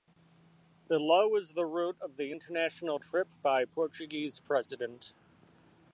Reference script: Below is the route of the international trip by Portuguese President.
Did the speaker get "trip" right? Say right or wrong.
right